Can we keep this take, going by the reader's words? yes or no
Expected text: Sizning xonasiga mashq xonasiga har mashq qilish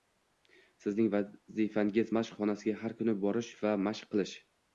no